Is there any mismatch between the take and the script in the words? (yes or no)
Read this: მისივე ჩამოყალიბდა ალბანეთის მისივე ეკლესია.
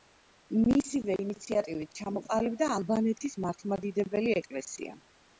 yes